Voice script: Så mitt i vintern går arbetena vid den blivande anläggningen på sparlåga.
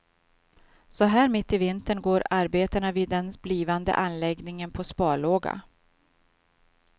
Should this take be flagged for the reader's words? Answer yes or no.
yes